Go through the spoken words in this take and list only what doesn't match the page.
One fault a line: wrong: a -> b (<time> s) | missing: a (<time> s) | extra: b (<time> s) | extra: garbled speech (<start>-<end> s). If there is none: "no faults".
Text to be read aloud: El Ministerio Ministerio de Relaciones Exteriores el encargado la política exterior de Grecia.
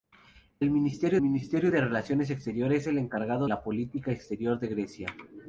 no faults